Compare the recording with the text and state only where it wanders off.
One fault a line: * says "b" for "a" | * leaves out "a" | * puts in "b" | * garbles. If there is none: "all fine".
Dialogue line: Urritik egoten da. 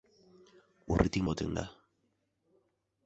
all fine